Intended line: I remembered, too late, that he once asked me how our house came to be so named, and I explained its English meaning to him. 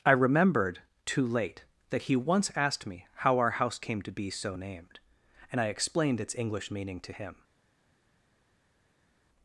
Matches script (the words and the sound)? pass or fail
pass